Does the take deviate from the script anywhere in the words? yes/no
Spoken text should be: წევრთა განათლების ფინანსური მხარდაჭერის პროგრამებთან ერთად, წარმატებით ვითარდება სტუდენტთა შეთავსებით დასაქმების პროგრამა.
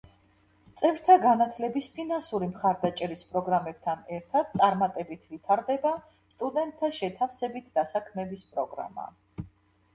no